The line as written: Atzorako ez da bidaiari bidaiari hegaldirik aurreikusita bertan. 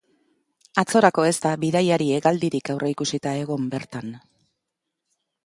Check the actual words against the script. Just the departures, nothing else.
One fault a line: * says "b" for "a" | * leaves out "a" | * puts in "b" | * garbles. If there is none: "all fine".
* leaves out "bidaiari"
* puts in "egon"